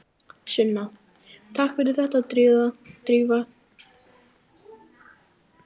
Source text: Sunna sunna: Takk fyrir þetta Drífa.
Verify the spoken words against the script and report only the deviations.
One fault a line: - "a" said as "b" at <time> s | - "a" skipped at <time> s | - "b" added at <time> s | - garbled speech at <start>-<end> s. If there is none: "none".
- "sunna" skipped at 0.8 s